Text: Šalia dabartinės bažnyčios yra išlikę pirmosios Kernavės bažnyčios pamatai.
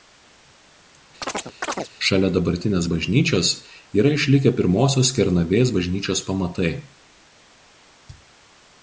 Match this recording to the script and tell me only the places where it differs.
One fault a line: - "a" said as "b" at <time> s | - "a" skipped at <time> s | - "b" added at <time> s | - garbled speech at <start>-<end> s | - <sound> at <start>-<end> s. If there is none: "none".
- chirp at 1.2-1.9 s